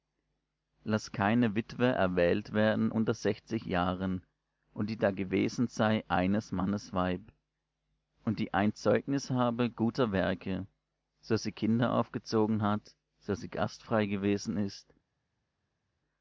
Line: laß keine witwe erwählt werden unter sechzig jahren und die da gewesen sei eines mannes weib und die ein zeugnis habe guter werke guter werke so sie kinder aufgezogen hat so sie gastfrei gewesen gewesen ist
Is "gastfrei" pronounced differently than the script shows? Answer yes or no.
no